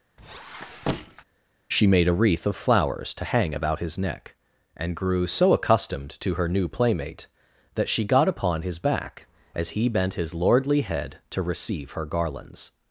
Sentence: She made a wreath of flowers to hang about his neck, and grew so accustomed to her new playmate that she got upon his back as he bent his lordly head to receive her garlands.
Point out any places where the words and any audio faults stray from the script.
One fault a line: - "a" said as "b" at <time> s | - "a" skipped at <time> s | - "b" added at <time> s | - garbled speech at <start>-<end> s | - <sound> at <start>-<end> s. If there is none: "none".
- squeak at 0.2-1.2 s